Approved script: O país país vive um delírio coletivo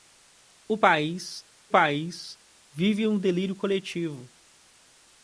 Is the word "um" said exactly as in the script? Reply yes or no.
yes